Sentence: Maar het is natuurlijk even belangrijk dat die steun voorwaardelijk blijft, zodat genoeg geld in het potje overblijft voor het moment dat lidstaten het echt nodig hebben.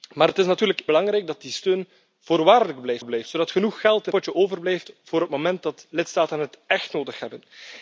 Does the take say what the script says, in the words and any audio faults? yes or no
no